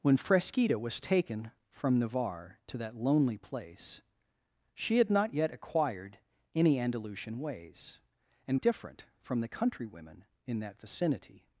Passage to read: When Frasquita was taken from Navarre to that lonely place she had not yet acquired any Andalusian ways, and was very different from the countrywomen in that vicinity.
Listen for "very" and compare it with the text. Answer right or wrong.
wrong